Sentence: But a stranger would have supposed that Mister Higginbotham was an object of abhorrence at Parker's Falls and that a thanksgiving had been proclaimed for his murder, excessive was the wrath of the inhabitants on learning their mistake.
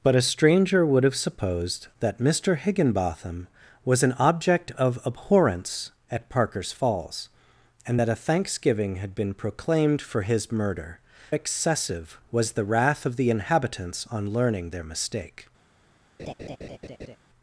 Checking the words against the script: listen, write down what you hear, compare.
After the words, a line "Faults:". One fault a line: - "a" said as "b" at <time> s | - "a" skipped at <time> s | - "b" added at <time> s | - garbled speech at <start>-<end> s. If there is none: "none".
But a stranger would have supposed that Mister Higginbotham was an object of abhorrence at Parker's Falls and that a thanksgiving had been proclaimed for his murder, excessive was the wrath of the inhabitants on learning their mistake.
Faults:
none